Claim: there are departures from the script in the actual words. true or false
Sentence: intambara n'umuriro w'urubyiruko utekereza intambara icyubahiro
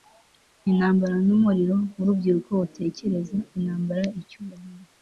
false